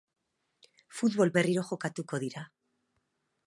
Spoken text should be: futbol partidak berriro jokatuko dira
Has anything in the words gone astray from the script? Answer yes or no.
yes